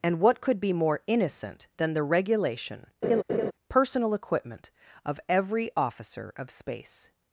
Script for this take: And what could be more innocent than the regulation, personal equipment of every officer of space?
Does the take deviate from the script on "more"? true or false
false